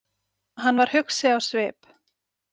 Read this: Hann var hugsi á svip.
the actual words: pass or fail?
pass